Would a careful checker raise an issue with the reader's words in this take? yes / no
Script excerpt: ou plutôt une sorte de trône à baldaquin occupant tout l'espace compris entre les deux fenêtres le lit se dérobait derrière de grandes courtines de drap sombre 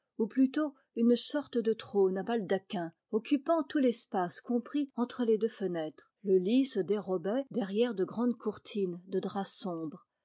no